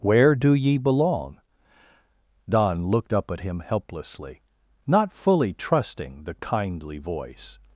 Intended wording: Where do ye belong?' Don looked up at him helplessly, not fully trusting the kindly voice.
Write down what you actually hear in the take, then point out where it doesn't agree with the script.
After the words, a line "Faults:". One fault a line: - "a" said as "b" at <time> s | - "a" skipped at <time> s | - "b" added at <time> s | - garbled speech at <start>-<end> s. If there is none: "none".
Where do ye belong?' Don looked up at him helplessly, not fully trusting the kindly voice.
Faults:
none